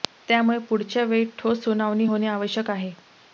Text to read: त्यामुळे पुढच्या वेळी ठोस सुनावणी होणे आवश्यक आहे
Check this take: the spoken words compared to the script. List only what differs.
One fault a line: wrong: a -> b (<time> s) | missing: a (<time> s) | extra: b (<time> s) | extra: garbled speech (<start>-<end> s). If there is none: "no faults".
no faults